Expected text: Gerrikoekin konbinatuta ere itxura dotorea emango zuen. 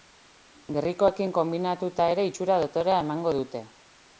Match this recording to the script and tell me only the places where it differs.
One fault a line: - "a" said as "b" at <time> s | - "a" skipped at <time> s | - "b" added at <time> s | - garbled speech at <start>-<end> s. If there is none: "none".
- "zuen" said as "dute" at 3.4 s